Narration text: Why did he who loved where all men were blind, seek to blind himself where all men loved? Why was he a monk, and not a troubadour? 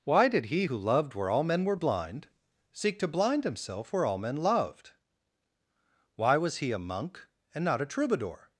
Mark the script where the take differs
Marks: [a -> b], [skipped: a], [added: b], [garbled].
Why did he who loved where all men were blind, seek to blind himself where all men loved? Why was he a monk, and not a troubadour?